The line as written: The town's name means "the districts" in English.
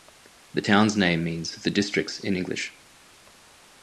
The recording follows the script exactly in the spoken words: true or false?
true